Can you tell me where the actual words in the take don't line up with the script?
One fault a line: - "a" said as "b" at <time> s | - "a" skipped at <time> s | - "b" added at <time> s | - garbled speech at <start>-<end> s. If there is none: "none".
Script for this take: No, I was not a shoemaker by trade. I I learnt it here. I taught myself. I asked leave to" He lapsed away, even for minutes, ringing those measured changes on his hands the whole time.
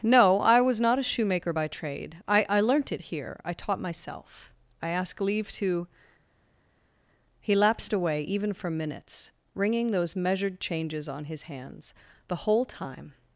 - "asked" said as "ask" at 4.9 s